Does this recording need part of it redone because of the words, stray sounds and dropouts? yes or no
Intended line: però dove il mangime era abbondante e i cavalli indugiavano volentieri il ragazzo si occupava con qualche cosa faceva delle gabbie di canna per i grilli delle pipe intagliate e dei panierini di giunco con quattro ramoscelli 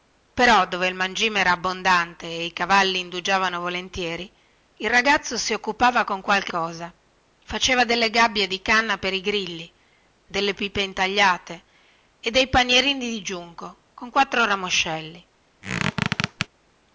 yes